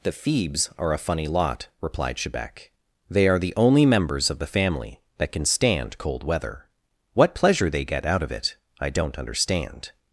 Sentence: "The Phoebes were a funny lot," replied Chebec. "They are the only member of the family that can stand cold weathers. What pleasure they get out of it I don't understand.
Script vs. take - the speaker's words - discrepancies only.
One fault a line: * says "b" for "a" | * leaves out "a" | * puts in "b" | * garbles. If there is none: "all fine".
* says "are" for "were"
* says "members" for "member"
* says "weather" for "weathers"